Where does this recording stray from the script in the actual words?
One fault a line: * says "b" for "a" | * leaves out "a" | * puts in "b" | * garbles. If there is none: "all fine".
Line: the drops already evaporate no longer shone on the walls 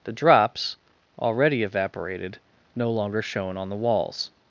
* says "evaporated" for "evaporate"